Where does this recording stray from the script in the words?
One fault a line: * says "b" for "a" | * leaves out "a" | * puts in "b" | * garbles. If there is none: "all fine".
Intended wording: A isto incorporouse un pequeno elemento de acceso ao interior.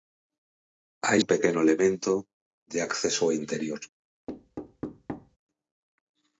* leaves out "isto incorporouse"